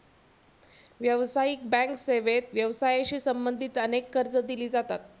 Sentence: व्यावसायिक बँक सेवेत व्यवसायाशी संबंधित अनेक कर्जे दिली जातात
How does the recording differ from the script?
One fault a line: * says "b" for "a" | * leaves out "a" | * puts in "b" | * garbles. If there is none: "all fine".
all fine